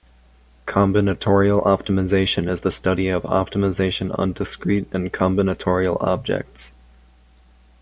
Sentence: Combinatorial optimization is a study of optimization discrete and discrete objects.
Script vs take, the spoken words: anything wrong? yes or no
yes